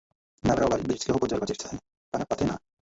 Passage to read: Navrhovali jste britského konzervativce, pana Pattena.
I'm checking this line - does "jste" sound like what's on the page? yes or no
no